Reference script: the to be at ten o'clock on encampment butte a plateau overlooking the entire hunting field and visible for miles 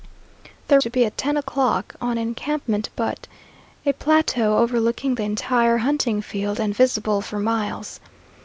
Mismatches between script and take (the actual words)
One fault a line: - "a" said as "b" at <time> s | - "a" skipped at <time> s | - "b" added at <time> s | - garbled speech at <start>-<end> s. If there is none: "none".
none